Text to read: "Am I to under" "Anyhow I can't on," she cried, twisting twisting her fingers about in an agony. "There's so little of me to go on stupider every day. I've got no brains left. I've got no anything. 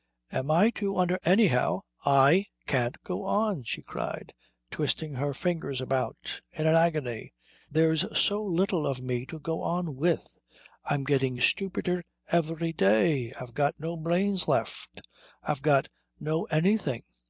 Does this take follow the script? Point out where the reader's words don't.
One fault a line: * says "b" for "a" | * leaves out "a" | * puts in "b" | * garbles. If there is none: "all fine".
* puts in "go"
* leaves out "twisting"
* puts in "with I'm getting"